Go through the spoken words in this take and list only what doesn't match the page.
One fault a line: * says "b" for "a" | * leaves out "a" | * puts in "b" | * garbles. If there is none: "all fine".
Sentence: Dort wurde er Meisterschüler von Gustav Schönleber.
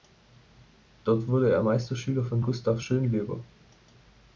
all fine